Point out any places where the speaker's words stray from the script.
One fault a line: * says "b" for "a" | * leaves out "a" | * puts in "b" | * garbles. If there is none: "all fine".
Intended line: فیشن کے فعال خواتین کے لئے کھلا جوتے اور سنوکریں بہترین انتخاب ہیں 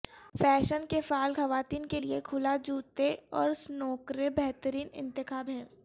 all fine